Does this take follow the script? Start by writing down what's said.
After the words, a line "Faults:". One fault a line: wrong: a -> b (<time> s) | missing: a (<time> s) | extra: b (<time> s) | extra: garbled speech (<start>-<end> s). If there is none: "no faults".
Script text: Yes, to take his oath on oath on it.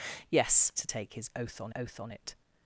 Yes, to take his oath on oath on it.
Faults:
no faults